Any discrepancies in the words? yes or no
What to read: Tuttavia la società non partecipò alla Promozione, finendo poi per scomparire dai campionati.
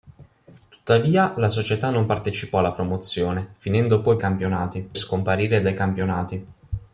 yes